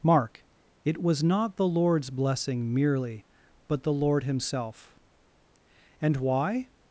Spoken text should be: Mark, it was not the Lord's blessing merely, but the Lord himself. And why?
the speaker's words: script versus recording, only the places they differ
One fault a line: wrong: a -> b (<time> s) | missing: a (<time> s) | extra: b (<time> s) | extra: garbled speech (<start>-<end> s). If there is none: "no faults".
no faults